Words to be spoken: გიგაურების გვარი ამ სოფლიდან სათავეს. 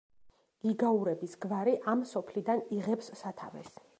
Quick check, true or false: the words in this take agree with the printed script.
false